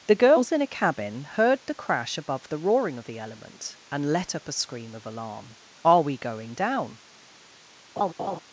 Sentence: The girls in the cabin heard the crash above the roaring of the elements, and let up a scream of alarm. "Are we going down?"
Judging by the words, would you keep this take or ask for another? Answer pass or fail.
fail